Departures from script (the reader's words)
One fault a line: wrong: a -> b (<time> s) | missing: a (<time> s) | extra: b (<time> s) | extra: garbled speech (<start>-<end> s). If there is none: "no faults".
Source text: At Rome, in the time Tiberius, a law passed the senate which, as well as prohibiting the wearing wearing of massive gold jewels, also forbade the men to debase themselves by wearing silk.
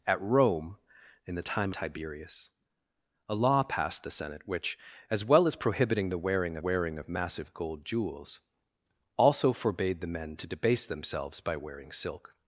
no faults